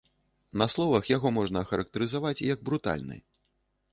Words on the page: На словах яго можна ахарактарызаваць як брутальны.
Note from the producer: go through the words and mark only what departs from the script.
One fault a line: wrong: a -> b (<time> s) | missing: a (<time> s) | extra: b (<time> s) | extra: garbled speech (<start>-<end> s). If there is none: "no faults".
no faults